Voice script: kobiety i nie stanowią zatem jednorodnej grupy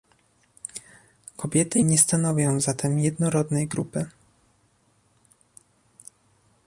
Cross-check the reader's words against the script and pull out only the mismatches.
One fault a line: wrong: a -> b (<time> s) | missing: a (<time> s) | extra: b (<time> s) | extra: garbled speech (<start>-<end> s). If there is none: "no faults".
no faults